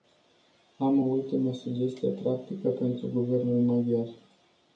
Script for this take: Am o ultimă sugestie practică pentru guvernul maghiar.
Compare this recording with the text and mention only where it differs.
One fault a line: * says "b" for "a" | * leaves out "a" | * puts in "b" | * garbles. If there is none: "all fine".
all fine